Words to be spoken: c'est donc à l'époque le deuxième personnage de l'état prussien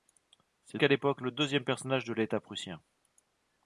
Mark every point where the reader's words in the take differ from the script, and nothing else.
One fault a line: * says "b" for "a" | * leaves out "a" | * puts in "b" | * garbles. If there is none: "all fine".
* leaves out "donc"